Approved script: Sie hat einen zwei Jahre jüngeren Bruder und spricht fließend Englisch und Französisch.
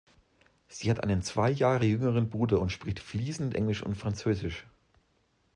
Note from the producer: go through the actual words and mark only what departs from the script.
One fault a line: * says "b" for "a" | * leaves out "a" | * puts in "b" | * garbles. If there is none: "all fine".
all fine